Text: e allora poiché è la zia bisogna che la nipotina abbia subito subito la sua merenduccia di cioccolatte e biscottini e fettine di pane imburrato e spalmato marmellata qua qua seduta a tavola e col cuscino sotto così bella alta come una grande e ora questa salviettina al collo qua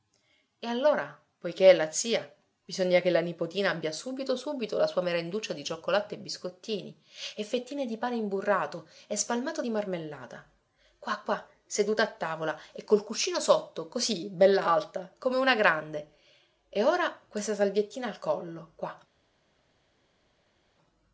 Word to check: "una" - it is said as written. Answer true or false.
true